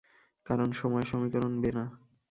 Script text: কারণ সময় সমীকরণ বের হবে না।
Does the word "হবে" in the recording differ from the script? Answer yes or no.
yes